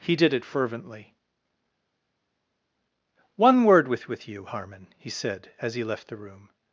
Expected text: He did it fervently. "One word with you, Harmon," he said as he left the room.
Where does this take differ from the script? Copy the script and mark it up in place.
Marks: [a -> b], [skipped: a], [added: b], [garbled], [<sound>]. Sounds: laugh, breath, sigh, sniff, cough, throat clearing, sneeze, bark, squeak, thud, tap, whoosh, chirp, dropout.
He did it fervently. "One word with [added: with] you, Harmon," he said as he left the room.